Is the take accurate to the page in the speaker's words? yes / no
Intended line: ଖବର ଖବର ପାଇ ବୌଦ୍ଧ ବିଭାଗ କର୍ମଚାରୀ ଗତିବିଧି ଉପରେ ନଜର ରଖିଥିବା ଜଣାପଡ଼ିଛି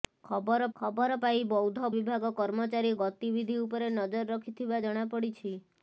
yes